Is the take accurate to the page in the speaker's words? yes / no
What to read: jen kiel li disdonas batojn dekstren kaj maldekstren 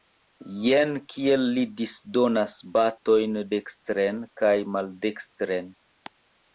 yes